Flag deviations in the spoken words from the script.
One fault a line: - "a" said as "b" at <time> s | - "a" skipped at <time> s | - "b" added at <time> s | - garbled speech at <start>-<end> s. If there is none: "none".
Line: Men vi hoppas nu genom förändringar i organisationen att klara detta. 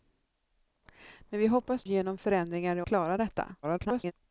- "nu" skipped at 1.9 s
- "organisationen att" skipped at 2.8 s
- garbled speech at 3.6-4.1 s